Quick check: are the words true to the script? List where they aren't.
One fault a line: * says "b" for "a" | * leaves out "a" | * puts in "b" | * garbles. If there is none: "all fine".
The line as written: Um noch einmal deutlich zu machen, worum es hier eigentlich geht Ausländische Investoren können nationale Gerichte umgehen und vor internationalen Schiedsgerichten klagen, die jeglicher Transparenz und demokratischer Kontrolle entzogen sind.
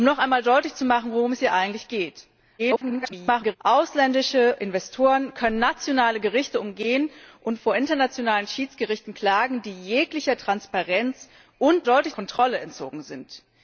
* garbles
* says "deutlich" for "demokratischer"